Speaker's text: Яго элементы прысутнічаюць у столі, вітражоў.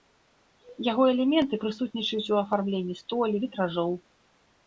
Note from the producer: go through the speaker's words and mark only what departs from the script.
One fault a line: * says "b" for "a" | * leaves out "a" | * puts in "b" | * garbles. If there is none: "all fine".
* puts in "афармленні"